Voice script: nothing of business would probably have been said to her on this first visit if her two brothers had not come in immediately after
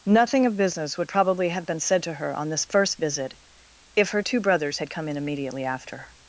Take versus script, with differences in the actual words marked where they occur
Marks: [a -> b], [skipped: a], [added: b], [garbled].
nothing of business would probably have been said to her on this first visit if her two brothers had [skipped: not] come in immediately after